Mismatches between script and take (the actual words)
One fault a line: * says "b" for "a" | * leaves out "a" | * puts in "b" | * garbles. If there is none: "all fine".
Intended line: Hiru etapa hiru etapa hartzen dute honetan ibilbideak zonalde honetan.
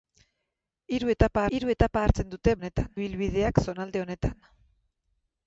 all fine